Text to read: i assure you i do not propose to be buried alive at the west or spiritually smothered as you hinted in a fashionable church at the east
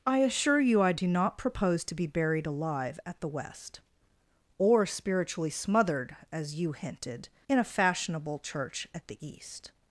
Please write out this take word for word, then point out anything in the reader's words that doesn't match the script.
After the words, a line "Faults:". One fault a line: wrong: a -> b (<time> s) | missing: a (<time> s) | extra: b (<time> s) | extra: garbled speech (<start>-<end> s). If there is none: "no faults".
i assure you i do not propose to be buried alive at the west or spiritually smothered as you hinted in a fashionable church at the east
Faults:
no faults